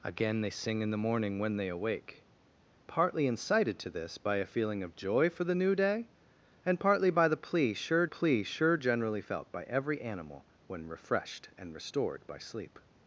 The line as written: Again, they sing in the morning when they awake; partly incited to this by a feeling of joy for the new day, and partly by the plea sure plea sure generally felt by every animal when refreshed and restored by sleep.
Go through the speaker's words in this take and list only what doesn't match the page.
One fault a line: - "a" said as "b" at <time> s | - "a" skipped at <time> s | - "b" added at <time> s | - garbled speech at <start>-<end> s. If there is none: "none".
none